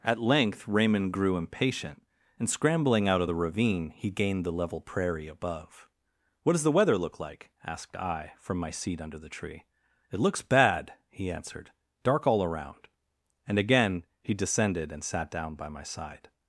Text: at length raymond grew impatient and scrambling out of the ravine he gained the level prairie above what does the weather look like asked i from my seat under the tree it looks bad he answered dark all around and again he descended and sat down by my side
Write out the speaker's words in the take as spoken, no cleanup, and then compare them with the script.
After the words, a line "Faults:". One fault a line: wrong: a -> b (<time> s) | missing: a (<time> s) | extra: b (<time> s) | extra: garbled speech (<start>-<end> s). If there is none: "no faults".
at length raymond grew impatient and scrambling out of the ravine he gained the level prairie above what does the weather look like asked i from my seat under the tree it looks bad he answered dark all around and again he descended and sat down by my side
Faults:
no faults